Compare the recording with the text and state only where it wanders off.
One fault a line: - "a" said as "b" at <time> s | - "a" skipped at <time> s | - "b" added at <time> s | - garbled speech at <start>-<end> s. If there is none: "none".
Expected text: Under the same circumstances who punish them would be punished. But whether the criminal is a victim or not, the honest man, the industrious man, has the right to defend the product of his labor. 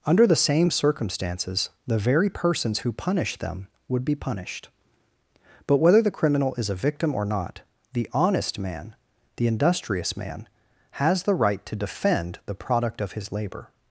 - "the very persons" added at 1.9 s